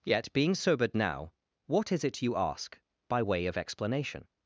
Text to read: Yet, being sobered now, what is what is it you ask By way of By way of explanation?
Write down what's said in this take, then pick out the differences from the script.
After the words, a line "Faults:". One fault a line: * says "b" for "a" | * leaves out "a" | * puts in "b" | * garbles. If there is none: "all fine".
Yet, being sobered now, what is it you ask By way of explanation?
Faults:
* leaves out "what is"
* leaves out "By way of"